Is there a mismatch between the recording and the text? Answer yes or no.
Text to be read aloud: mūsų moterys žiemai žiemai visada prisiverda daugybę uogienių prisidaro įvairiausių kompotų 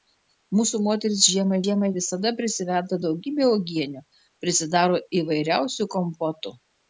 no